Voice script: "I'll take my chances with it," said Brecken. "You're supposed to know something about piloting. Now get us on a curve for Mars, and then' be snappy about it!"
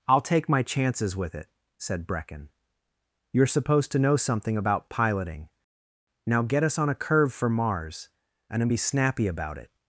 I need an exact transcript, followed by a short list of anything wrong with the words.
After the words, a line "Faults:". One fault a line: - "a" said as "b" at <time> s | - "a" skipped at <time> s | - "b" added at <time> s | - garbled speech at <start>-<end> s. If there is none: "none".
"I'll take my chances with it," said Brecken. "You're supposed to know something about piloting. Now get us on a curve for Mars, and then' be snappy about it!"
Faults:
none